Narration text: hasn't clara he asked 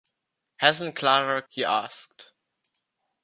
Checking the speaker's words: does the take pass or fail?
pass